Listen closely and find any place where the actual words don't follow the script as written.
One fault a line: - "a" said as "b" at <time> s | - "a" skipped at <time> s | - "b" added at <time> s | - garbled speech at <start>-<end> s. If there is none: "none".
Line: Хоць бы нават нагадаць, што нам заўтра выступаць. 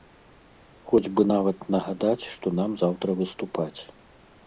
none